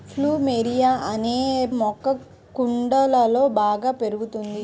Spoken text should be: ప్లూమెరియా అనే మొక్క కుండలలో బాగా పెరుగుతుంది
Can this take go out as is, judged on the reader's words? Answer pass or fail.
pass